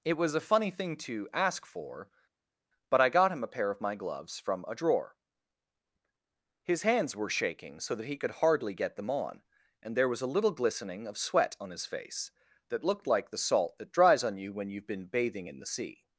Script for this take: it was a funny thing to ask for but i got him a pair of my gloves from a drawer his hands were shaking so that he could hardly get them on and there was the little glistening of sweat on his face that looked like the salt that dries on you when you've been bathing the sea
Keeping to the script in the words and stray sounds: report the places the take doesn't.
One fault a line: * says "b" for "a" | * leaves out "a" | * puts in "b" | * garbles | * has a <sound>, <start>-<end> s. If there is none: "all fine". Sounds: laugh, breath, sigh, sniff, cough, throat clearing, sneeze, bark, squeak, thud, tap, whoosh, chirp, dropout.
* says "a" for "the"
* puts in "in"